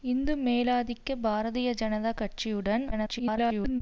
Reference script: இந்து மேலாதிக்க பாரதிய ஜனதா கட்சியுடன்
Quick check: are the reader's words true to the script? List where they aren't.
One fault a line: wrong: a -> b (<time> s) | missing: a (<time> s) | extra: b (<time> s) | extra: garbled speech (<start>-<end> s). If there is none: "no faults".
extra: garbled speech (2.9-3.8 s)